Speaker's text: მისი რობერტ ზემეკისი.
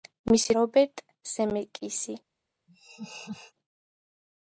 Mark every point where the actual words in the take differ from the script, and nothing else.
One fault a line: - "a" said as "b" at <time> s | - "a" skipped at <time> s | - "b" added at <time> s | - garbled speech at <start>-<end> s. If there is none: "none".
none